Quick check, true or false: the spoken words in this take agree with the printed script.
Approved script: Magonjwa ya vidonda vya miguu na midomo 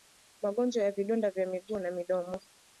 true